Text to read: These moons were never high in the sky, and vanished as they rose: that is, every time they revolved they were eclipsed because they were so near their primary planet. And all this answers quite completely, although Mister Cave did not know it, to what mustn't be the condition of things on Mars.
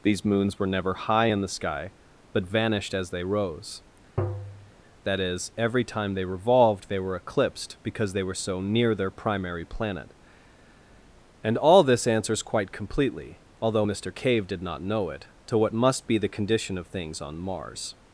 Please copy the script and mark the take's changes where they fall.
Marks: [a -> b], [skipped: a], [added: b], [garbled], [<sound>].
These moons were never high in the sky, [and -> but] vanished as they rose: [tap] that is, every time they revolved they were eclipsed because they were so near their primary planet. And all this answers quite completely, although Mister Cave did not know it, to what [mustn't -> must] be the condition of things on Mars.